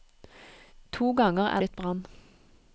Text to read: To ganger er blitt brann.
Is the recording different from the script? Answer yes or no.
no